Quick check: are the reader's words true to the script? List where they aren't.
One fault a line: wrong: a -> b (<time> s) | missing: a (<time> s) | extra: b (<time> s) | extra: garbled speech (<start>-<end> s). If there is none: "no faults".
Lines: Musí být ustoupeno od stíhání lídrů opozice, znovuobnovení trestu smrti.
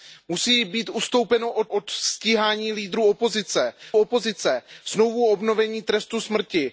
extra: od (1.7 s)
extra: opozice (4.0 s)